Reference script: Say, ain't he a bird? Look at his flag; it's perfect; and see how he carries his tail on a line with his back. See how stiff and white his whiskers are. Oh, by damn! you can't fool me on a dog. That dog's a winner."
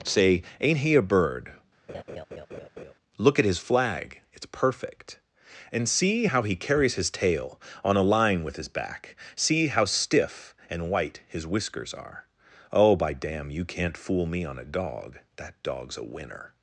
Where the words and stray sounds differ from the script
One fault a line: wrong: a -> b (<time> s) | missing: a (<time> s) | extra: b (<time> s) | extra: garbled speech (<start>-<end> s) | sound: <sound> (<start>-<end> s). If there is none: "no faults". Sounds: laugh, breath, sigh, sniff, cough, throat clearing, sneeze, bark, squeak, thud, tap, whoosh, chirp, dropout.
sound: laugh (1.9-2.9 s)